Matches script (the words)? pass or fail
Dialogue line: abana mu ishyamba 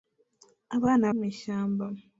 pass